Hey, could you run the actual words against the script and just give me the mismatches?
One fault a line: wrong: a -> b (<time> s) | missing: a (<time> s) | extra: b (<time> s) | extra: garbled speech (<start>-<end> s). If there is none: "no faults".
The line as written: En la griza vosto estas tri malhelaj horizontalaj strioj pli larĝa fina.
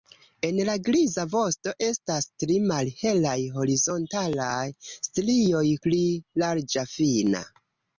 no faults